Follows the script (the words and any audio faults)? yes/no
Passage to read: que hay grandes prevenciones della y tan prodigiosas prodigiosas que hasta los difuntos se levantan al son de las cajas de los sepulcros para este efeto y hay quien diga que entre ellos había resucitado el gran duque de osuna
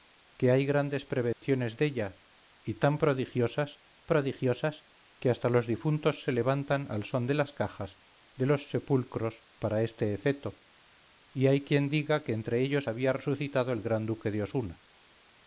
no